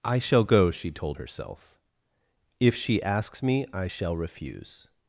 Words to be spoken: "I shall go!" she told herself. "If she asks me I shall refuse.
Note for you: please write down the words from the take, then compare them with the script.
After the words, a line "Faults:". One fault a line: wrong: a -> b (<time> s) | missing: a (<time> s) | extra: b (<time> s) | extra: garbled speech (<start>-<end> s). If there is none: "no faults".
"I shall go!" she told herself. "If she asks me I shall refuse.
Faults:
no faults